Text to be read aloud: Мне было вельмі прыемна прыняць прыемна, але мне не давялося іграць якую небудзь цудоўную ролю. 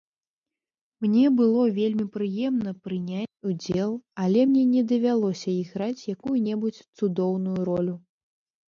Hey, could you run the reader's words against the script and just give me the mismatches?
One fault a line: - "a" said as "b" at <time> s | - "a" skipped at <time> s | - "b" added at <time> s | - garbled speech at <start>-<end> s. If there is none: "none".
- "прыемна" said as "удзел" at 3.5 s